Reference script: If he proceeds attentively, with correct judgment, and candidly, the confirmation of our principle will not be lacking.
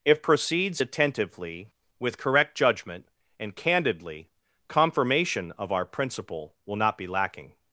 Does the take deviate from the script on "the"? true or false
true